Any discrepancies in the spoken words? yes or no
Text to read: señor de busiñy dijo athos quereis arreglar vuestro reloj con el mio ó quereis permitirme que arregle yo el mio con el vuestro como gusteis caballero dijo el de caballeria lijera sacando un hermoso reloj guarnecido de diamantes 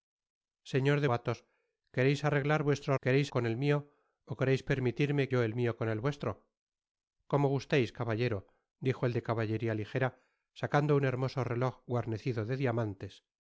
yes